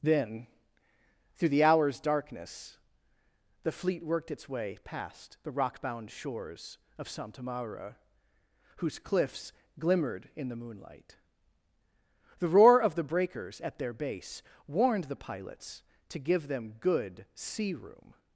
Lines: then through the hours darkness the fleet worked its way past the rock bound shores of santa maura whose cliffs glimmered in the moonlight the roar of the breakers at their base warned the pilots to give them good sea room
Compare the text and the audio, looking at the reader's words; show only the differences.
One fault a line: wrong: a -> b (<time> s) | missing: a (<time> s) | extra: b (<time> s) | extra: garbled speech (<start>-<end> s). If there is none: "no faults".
no faults